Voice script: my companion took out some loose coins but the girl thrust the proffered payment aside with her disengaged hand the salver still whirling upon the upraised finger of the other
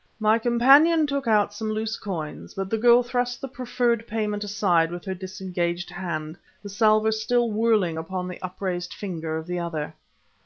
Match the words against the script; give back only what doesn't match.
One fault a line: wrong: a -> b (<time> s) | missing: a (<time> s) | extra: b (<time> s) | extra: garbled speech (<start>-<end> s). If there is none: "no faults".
no faults